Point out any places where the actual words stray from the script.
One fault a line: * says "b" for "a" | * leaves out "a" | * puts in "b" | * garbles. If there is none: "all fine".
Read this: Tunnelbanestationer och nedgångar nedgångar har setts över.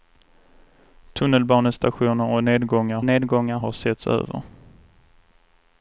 all fine